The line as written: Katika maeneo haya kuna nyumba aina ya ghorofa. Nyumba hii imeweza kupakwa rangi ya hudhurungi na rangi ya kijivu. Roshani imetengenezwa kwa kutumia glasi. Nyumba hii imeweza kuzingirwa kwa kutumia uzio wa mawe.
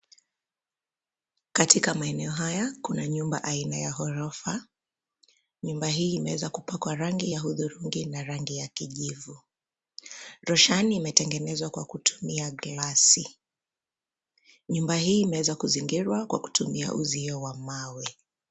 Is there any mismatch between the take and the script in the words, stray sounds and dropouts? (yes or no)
no